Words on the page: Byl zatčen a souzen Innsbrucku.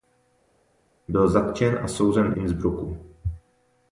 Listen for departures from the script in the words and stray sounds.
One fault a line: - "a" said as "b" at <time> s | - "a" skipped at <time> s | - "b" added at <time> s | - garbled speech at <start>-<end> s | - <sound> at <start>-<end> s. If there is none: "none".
none